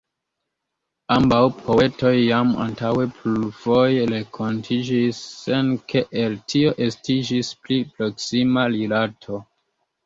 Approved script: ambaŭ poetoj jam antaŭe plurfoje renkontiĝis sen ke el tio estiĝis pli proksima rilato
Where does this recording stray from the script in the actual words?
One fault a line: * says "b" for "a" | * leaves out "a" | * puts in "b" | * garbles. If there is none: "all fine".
all fine